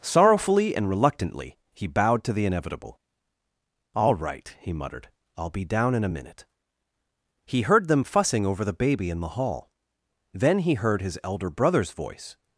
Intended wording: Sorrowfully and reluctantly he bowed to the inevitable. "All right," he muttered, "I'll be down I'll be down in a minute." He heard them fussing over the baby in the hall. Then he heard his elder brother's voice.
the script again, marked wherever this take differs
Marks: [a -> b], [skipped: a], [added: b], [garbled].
Sorrowfully and reluctantly he bowed to the inevitable. "All right," he muttered, "I'll be down [skipped: I'll be down] in a minute." He heard them fussing over the baby in the hall. Then he heard his elder brother's voice.